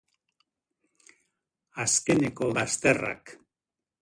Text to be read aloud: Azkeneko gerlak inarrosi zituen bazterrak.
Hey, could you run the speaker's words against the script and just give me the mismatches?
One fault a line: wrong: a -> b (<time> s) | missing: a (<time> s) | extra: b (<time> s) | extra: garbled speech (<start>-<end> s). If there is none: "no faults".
missing: gerlak inarrosi zituen (2.5 s)